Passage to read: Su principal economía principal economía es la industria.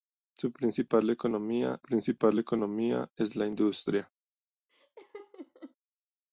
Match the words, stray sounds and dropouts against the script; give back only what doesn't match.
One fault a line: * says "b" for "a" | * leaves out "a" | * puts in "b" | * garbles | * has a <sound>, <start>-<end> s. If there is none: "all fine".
* has a laugh, 4.7-5.8 s